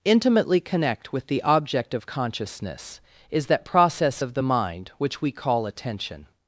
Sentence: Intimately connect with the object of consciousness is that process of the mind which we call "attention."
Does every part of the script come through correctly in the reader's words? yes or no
yes